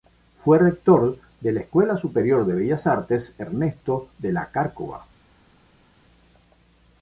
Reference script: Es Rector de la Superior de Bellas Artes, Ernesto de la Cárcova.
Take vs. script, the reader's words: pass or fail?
fail